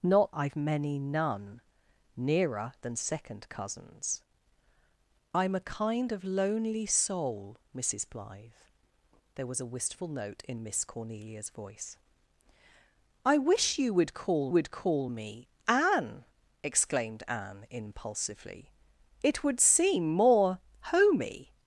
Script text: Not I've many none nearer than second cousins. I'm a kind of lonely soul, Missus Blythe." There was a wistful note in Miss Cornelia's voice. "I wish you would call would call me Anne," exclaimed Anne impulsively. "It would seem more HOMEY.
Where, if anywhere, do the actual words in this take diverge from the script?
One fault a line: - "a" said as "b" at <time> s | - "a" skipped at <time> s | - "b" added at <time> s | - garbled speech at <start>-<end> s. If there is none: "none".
none